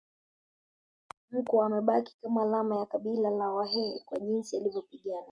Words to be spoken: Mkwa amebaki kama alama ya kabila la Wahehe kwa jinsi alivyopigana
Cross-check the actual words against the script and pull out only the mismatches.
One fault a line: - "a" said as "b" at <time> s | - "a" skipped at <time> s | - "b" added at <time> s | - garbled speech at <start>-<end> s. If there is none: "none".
none